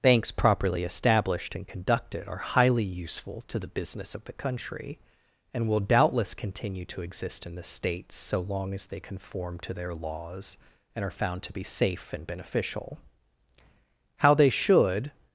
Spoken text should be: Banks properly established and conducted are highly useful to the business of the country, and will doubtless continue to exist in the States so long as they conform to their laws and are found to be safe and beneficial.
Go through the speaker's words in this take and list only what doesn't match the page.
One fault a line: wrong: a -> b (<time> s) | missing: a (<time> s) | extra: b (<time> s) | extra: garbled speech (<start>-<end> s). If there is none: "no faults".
extra: How they should (14.2 s)